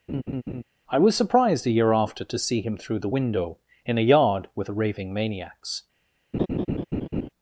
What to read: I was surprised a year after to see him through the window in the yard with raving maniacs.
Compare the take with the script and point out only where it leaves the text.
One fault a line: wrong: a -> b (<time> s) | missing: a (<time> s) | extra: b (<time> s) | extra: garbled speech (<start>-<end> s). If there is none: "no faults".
wrong: the -> a (4.0 s)